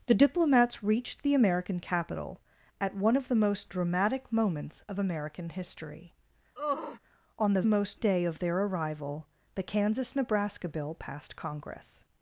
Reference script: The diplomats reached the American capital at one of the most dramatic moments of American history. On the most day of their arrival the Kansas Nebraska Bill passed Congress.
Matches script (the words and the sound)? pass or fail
fail